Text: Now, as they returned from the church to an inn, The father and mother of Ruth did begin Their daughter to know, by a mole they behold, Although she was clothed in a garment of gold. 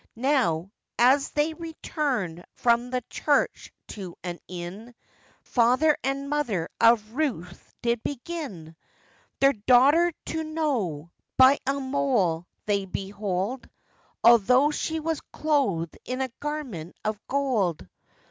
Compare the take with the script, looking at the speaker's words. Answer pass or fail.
fail